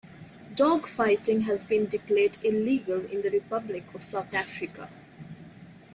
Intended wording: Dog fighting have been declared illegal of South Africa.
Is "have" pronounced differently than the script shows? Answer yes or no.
yes